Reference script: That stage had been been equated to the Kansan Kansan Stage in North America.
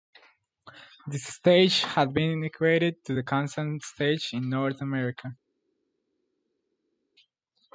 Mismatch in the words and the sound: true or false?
true